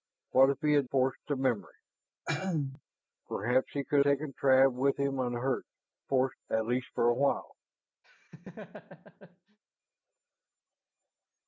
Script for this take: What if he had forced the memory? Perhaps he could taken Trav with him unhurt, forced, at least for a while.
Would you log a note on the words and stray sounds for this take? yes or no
yes